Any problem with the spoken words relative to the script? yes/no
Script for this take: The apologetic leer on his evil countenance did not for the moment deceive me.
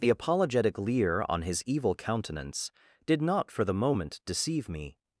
no